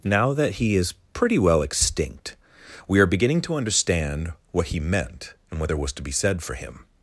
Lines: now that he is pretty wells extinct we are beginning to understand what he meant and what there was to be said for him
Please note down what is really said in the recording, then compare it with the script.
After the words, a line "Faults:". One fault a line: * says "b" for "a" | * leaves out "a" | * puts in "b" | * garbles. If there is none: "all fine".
now that he is pretty well extinct we are beginning to understand what he meant and what there was to be said for him
Faults:
* says "well" for "wells"